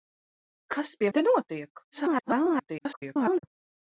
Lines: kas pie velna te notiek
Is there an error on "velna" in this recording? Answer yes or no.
yes